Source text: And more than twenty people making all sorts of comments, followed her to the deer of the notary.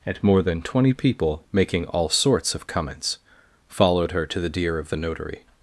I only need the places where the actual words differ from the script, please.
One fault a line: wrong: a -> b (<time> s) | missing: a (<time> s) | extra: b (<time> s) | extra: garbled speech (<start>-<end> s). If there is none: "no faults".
no faults